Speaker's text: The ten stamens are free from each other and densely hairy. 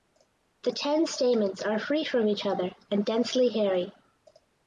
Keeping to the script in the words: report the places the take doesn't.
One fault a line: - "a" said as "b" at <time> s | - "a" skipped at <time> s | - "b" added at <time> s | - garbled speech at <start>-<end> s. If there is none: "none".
none